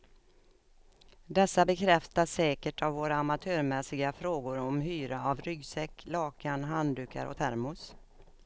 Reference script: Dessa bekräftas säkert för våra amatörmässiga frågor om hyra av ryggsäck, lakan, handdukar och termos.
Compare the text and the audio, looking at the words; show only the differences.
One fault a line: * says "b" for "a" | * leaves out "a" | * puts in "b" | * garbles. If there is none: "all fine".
* says "av" for "för"